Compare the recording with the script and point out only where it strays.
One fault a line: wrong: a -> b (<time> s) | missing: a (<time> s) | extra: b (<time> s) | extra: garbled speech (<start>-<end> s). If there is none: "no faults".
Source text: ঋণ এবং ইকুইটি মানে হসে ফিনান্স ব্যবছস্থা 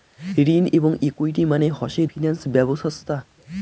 no faults